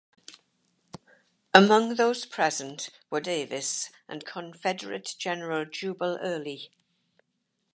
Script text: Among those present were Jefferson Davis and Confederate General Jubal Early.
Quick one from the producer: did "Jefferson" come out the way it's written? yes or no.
no